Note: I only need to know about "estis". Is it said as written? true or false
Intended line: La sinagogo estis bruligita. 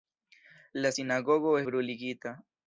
false